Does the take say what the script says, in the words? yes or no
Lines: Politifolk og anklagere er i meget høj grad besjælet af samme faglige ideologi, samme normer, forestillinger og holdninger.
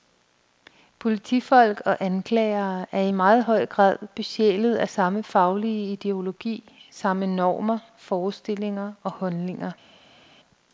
yes